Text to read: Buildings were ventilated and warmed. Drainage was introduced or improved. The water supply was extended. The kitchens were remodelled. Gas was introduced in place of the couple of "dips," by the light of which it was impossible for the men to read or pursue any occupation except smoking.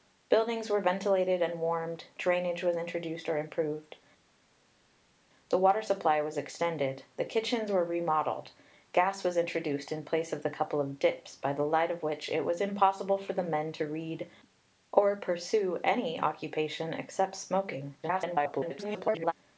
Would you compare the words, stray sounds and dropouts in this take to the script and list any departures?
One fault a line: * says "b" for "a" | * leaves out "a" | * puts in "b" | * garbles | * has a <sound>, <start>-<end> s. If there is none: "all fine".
* garbles